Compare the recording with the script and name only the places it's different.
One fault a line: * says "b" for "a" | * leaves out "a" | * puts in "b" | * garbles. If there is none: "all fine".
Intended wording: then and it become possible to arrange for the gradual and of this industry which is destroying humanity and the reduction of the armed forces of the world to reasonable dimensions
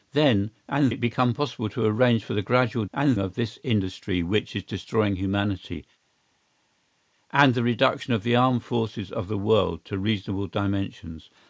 all fine